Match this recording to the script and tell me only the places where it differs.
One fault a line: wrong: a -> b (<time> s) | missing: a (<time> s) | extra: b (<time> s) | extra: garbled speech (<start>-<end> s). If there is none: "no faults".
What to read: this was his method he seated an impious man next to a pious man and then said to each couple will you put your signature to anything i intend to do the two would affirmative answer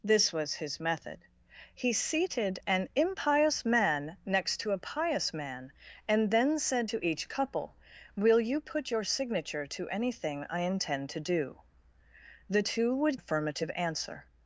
no faults